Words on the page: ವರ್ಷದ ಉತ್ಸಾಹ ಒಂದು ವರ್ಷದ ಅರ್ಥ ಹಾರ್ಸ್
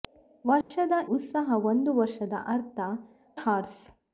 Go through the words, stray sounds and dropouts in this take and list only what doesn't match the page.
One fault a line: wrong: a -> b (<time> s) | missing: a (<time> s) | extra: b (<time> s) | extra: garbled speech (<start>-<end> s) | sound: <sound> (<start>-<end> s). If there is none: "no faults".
sound: dropout (0.6-0.7 s)